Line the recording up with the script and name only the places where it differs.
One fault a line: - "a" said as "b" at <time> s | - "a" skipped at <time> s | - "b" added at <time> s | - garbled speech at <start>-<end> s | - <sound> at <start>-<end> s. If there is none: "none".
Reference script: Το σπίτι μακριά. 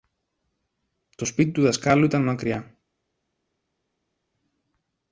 - "του δασκάλου ήταν" added at 1.5 s